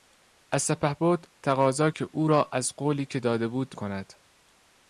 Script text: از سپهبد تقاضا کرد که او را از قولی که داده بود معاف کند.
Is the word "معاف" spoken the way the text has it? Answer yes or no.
no